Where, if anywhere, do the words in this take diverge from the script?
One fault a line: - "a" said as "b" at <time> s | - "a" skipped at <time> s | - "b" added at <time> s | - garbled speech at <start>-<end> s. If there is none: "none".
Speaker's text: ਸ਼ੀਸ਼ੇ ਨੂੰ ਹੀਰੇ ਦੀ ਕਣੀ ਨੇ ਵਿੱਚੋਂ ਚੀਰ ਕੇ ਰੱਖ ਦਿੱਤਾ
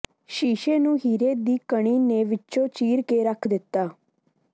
none